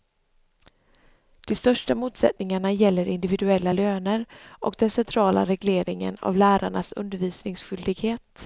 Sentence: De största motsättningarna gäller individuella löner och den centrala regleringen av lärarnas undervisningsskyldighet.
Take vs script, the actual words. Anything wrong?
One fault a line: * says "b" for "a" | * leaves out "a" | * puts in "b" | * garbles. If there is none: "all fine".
all fine